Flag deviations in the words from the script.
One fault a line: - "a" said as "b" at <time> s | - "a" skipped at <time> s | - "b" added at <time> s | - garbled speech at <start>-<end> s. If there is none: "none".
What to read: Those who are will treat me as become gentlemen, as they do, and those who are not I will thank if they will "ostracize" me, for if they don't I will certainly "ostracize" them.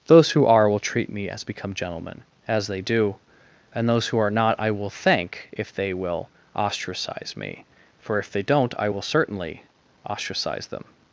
none